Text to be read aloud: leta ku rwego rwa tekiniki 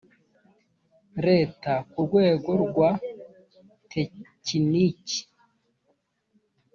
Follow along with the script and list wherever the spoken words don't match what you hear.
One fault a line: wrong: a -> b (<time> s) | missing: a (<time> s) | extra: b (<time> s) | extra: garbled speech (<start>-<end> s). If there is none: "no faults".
no faults